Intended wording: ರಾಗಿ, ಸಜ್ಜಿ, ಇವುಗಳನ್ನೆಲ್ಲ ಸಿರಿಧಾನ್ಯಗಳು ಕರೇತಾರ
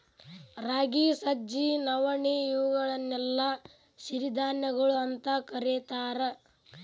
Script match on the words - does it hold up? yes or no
no